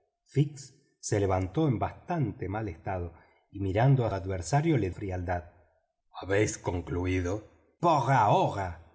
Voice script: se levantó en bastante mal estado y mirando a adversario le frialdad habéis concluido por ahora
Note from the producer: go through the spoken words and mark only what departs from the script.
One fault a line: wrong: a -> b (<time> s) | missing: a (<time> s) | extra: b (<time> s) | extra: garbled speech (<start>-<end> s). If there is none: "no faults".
no faults